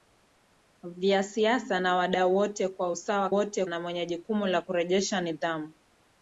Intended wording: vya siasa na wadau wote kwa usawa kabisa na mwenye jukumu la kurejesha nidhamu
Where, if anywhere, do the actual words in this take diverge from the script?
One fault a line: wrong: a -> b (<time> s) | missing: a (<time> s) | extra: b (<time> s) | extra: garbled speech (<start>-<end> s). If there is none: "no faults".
wrong: kabisa -> wote (3.3 s)